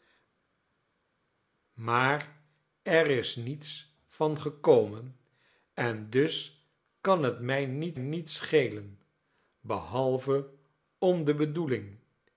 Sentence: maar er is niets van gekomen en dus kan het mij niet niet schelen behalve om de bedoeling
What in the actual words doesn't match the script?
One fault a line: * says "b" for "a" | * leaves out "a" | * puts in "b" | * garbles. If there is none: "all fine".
all fine